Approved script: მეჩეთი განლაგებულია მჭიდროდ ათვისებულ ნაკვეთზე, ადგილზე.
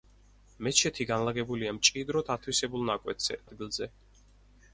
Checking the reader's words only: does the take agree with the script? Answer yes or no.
yes